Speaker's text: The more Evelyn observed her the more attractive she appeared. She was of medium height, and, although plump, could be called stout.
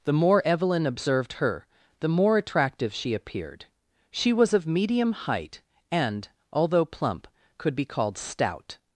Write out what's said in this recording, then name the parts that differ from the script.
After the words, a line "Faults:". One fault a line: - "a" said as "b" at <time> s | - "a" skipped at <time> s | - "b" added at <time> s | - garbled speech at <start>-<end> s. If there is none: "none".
The more Evelyn observed her the more attractive she appeared. She was of medium height, and, although plump, could be called stout.
Faults:
none